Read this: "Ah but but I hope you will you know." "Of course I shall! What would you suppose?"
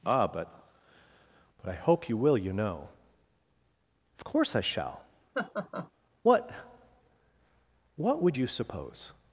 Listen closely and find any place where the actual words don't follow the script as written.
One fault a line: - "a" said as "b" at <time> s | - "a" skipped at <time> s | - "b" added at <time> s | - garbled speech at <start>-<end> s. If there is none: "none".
- "What" added at 8.0 s